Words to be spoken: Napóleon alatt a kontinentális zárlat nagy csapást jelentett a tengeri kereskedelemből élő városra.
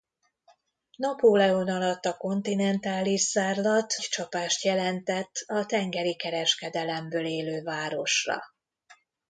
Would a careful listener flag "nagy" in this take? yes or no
yes